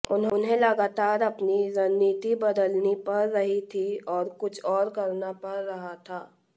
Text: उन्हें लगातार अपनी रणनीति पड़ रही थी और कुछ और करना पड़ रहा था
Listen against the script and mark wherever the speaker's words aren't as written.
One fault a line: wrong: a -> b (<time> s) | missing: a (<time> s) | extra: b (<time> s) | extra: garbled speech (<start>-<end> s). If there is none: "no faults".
extra: बदलनी (2.4 s)